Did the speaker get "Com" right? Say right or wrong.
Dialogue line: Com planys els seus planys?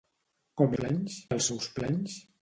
right